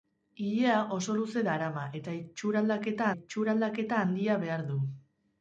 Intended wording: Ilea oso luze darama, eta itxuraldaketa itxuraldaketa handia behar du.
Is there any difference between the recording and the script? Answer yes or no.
no